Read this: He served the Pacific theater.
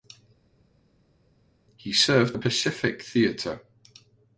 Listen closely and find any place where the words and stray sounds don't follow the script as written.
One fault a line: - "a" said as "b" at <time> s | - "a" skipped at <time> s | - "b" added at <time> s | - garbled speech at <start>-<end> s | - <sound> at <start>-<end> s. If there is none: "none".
none